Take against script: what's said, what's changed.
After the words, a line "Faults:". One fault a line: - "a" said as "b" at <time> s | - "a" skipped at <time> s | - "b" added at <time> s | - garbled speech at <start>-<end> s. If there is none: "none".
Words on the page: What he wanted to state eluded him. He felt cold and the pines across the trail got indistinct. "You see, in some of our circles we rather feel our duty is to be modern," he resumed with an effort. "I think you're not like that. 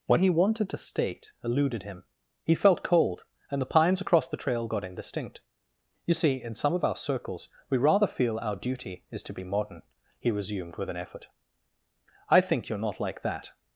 What he wanted to state eluded him. He felt cold and the pines across the trail got indistinct. "You see, in some of our circles we rather feel our duty is to be modern," he resumed with an effort. "I think you're not like that.
Faults:
none